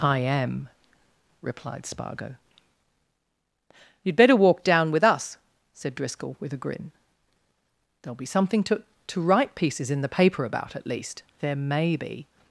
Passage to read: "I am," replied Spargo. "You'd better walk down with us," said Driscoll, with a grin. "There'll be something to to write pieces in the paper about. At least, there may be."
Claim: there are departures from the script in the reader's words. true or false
false